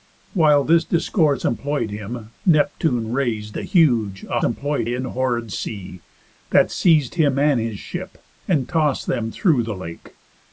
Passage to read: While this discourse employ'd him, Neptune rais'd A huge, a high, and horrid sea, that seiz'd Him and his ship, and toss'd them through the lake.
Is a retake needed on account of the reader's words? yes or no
yes